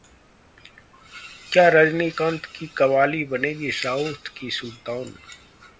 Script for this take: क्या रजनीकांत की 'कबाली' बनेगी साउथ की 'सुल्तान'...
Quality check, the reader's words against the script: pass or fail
pass